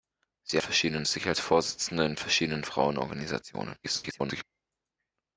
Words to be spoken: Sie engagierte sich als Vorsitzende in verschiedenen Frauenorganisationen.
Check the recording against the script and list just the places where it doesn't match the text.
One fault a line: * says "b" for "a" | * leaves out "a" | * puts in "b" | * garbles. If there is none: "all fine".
* says "verschiedenen" for "engagierte"
* garbles